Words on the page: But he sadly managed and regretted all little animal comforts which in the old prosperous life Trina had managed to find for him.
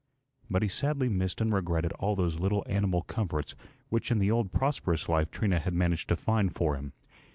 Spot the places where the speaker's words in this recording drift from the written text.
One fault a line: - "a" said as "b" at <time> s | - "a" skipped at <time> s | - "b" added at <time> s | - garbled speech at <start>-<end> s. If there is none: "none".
- "managed" said as "missed" at 1.1 s
- "those" added at 2.1 s